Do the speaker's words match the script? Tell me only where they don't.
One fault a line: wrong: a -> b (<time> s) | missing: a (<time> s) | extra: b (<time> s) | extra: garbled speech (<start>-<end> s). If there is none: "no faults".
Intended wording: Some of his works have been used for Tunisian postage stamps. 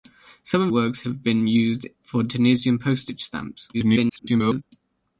missing: his (0.7 s)
extra: garbled speech (3.7-4.6 s)